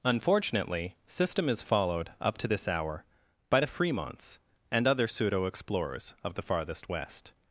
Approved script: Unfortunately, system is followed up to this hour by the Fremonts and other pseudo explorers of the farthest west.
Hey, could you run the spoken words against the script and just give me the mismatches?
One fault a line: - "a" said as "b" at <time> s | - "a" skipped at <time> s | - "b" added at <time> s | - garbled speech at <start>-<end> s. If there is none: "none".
none